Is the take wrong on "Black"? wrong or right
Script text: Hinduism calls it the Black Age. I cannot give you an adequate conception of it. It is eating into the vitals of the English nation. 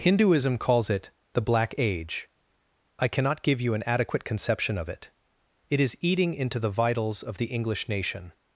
right